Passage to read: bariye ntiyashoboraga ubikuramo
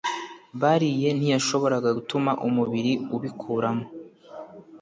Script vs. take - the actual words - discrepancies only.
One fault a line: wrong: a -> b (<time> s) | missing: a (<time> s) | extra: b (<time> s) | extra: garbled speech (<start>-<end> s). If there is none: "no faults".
extra: gutuma umubiri (2.0 s)